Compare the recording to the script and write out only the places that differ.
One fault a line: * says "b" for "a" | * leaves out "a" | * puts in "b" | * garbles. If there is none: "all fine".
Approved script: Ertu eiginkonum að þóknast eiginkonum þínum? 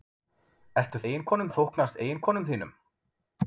all fine